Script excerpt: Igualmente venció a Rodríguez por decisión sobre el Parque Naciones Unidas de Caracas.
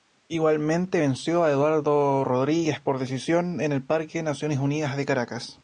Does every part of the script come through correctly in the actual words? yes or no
no